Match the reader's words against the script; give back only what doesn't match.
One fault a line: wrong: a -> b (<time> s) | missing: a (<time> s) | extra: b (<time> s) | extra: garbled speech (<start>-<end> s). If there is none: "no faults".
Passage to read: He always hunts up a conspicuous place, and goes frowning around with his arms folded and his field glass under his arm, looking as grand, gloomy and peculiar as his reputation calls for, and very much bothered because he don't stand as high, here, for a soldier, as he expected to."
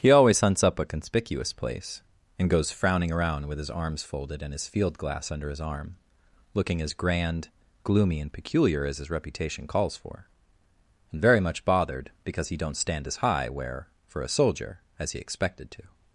wrong: here -> where (13.5 s)